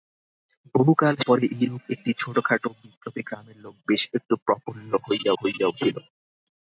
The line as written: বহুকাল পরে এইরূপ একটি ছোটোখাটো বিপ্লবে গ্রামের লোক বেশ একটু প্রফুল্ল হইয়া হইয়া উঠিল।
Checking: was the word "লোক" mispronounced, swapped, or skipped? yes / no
no